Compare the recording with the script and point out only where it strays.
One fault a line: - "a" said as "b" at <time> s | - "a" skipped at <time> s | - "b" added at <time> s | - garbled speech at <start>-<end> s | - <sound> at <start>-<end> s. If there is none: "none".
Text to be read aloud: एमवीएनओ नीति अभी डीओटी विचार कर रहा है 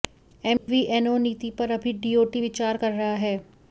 - dropout at 0.6-0.7 s
- "पर" added at 1.6 s